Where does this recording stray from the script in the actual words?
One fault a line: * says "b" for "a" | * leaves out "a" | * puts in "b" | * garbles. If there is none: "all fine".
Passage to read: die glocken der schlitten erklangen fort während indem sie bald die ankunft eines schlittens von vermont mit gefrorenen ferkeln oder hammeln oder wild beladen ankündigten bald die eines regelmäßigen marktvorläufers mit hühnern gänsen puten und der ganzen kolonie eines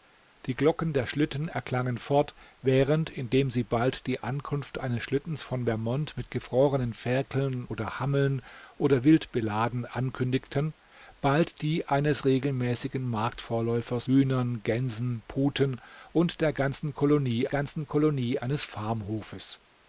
* leaves out "mit"
* puts in "ganzen kolonie"